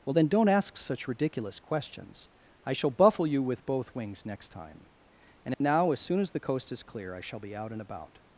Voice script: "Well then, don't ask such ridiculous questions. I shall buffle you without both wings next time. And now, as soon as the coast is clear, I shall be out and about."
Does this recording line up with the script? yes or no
no